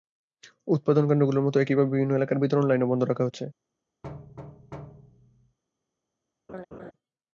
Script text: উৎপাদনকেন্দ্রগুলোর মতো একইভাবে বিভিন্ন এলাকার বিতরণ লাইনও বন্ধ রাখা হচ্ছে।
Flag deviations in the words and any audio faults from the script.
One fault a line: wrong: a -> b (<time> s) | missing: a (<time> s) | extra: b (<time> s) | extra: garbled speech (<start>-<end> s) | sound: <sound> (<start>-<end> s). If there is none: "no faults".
sound: thud (4.0-5.6 s)
sound: laugh (6.5-6.9 s)